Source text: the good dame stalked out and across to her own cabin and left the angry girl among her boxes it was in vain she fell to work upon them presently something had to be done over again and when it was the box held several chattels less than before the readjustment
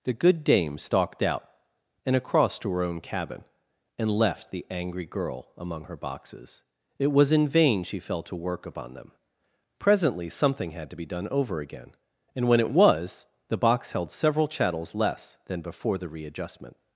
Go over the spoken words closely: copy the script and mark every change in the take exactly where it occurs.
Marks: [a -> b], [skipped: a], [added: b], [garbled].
the good dame stalked out and across to her own cabin and left the angry girl among her boxes it was in vain she fell to work upon them presently something had to be done over again and when it was the box held several chattels less than before the readjustment